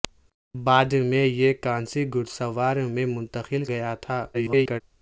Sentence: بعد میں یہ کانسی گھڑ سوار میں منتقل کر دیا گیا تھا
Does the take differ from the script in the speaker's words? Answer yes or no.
yes